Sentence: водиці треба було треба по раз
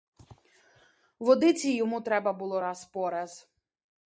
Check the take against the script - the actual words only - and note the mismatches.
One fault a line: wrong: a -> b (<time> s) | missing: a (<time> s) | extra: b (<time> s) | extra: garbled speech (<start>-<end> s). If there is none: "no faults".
extra: йому (1.7 s)
wrong: треба -> раз (2.6 s)